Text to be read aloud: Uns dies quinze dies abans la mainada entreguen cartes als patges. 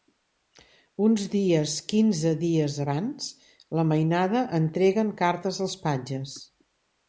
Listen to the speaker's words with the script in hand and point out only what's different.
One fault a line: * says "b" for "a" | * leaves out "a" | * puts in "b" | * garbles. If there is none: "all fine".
all fine